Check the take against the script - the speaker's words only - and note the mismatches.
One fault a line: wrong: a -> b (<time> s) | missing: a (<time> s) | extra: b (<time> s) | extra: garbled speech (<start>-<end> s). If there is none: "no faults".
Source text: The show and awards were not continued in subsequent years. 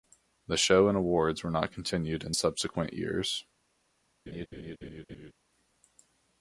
no faults